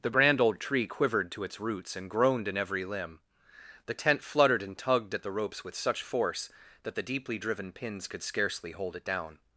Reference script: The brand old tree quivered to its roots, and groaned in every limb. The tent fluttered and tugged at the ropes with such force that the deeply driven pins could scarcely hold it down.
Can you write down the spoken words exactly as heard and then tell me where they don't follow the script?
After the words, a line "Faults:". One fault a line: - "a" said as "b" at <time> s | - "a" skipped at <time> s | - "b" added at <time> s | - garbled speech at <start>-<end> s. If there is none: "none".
The brand old tree quivered to its roots, and groaned in every limb. The tent fluttered and tugged at the ropes with such force that the deeply driven pins could scarcely hold it down.
Faults:
none